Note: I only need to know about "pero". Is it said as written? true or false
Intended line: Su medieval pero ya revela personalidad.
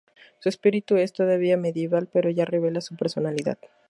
true